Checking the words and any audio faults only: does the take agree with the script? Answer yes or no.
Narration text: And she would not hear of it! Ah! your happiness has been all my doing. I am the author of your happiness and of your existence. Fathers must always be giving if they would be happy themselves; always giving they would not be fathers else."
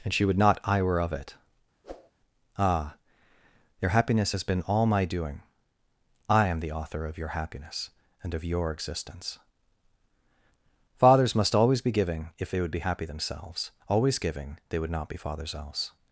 no